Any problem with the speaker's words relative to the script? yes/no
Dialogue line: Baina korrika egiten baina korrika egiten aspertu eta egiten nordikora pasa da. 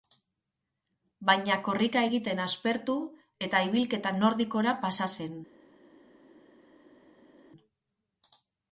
yes